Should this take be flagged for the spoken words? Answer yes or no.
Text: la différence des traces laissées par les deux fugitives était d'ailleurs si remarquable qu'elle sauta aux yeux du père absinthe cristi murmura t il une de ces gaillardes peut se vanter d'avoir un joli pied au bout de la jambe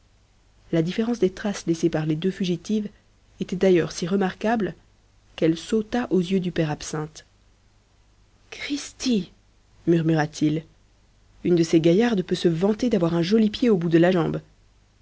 no